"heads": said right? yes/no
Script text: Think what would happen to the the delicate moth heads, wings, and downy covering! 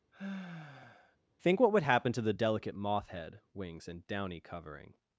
no